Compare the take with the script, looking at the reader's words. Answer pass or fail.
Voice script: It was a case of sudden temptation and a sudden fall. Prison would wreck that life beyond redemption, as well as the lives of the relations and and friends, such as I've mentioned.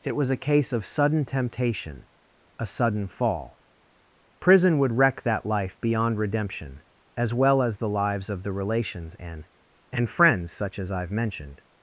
fail